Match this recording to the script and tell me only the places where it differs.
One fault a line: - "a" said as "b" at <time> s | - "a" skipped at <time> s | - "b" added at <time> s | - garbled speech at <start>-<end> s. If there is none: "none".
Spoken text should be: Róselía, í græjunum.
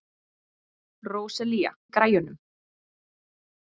none